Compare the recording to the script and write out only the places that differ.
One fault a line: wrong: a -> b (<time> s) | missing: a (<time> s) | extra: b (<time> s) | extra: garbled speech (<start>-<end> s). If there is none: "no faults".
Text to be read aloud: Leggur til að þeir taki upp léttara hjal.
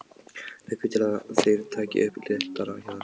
no faults